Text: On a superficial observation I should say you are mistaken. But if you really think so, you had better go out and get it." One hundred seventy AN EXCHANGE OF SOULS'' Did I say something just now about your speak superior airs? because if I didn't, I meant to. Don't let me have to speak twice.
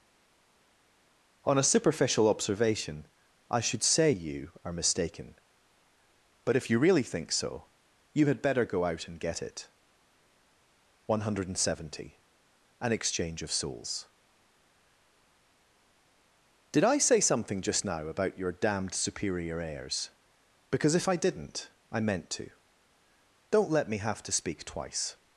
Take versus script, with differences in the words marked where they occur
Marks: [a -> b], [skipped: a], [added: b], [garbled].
On a superficial observation I should say you are mistaken. But if you really think so, you had better go out and get it." One hundred seventy AN EXCHANGE OF SOULS'' Did I say something just now about your [speak -> damned] superior airs? because if I didn't, I meant to. Don't let me have to speak twice.